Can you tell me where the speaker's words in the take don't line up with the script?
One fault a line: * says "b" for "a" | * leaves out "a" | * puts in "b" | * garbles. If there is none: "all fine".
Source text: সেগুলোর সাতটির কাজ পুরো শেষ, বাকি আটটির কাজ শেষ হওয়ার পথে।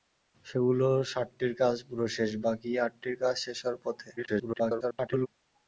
* garbles